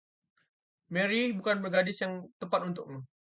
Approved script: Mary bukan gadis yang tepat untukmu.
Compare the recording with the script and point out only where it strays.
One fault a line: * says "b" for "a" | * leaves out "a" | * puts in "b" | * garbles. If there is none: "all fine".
all fine